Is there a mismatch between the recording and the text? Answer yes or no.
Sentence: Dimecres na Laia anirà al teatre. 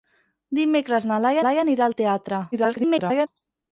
yes